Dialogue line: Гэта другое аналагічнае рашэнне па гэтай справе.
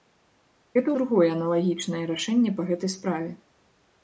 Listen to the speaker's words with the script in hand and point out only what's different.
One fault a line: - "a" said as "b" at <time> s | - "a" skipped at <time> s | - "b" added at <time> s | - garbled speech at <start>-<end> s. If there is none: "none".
none